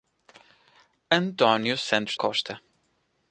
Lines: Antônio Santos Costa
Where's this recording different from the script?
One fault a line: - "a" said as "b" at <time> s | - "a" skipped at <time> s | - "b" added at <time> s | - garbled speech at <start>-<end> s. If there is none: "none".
none